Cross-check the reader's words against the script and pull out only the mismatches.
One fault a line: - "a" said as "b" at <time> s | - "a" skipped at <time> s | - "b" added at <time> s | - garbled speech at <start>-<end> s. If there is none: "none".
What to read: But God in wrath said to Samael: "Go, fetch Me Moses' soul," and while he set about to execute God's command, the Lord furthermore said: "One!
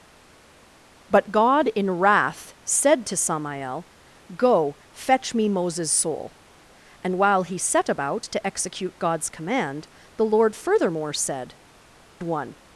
none